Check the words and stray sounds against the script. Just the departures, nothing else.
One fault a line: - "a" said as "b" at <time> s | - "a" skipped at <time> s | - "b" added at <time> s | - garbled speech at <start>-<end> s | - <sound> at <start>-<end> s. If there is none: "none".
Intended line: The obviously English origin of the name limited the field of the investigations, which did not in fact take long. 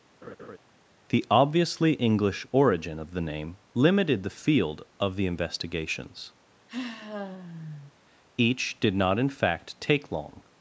- laugh at 0.2-0.6 s
- sigh at 6.7-7.9 s
- "which" said as "each" at 8.4 s